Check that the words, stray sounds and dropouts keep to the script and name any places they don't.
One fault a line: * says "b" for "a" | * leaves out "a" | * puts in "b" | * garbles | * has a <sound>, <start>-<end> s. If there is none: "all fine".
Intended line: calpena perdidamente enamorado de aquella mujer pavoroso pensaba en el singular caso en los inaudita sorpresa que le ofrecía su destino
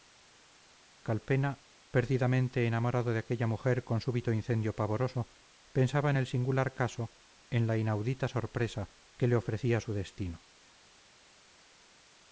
* puts in "con súbito incendio"
* says "la" for "los"